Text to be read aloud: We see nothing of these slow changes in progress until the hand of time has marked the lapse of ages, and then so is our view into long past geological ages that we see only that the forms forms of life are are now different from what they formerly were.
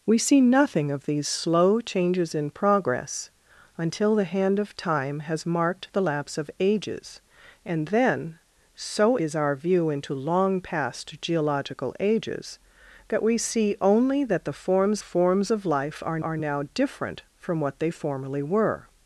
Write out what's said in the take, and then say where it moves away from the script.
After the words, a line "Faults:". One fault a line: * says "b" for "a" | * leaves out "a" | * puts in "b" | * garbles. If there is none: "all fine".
We see nothing of these slow changes in progress until the hand of time has marked the lapse of ages, and then so is our view into long past geological ages that we see only that the forms forms of life are are now different from what they formerly were.
Faults:
all fine